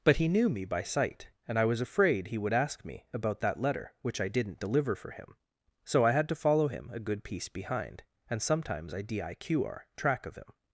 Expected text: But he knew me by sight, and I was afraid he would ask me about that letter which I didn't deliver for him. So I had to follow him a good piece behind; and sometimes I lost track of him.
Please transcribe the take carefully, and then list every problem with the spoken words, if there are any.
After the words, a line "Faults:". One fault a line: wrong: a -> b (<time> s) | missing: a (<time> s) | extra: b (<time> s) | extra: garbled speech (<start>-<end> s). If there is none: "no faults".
But he knew me by sight, and I was afraid he would ask me about that letter which I didn't deliver for him. So I had to follow him a good piece behind; and sometimes I diqr track of him.
Faults:
wrong: lost -> diqr (9.0 s)